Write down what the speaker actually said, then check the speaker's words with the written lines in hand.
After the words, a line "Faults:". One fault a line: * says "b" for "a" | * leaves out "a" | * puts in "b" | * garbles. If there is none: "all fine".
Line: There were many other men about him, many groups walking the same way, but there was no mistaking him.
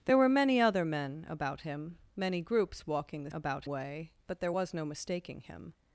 There were many other men about him, many groups walking the about way, but there was no mistaking him.
Faults:
* says "about" for "same"